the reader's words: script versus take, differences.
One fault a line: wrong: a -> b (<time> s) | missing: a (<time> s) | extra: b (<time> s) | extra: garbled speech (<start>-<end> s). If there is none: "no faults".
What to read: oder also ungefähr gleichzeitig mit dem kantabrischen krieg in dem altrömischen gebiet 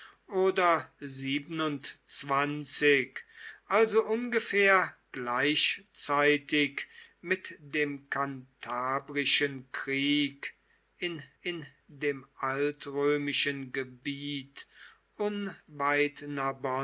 extra: in (11.4 s)